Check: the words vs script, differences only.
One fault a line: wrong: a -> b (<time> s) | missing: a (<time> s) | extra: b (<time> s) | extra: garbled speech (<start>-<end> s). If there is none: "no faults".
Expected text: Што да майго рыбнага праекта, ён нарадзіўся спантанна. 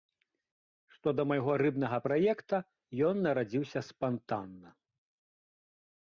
no faults